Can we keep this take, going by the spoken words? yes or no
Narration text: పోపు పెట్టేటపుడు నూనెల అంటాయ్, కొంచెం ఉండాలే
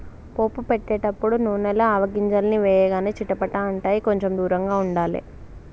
no